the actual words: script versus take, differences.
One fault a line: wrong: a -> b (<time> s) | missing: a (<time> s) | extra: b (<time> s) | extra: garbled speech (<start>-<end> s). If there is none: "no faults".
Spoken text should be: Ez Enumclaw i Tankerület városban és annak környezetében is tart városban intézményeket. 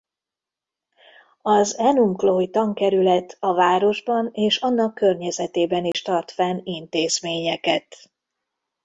wrong: Ez -> Az (1.4 s)
extra: a (3.4 s)
wrong: városban -> fenn (6.3 s)